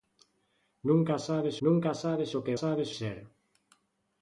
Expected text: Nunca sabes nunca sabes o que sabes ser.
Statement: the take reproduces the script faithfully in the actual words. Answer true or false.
true